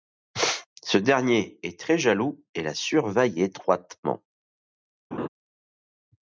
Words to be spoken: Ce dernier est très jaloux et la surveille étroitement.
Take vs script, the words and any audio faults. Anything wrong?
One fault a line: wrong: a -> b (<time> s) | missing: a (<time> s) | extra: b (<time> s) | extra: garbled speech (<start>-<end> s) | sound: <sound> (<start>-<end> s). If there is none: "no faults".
sound: laugh (5.1-5.3 s)